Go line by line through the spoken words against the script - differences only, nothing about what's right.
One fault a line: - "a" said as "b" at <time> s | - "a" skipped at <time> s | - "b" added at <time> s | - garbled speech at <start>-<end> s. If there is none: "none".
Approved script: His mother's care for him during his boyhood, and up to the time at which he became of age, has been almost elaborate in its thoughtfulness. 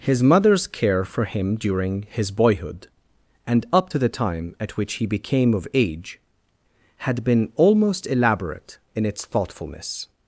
- "has" said as "had" at 7.0 s